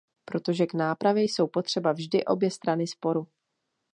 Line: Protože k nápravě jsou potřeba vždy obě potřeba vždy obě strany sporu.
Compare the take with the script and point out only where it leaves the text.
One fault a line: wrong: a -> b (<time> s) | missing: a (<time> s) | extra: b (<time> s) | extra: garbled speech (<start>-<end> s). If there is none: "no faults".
missing: potřeba vždy obě (2.5 s)